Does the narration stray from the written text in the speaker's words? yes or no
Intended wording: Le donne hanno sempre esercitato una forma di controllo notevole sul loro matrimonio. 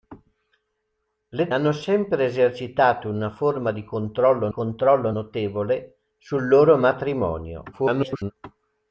yes